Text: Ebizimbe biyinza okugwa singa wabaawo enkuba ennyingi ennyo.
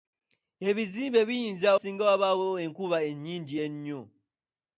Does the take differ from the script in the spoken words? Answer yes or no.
yes